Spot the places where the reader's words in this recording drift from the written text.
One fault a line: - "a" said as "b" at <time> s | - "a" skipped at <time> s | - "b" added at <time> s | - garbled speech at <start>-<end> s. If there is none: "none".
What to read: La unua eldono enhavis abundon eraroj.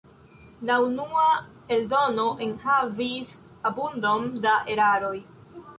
- "da" added at 4.5 s